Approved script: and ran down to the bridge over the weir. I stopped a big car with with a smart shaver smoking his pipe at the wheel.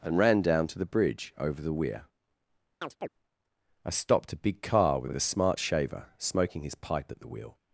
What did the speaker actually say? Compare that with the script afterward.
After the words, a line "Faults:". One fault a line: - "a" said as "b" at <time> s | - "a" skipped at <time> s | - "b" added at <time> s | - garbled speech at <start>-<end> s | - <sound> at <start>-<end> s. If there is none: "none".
and ran down to the bridge over the weir. I stopped a big car with with a smart shaver smoking his pipe at the wheel.
Faults:
- chirp at 2.8-3.1 s